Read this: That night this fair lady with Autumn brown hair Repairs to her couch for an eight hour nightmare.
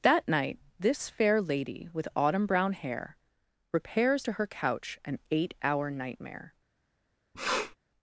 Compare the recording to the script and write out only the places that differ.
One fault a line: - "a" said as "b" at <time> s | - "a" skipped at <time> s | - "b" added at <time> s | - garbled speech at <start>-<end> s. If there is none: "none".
- "for" skipped at 5.0 s